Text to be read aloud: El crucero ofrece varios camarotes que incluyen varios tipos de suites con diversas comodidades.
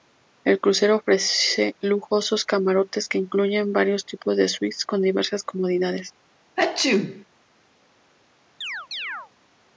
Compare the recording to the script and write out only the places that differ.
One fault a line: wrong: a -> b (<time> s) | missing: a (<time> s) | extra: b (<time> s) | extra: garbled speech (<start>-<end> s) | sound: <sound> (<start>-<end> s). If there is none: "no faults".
wrong: varios -> lujosos (1.8 s)
sound: sneeze (6.6-7.2 s)
sound: chirp (8.6-9.3 s)